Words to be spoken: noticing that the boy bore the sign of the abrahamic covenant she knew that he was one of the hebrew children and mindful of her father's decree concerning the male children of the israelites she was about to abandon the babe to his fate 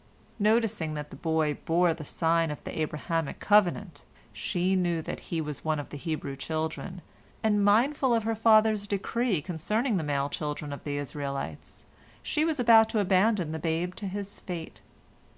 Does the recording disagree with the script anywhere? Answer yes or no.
no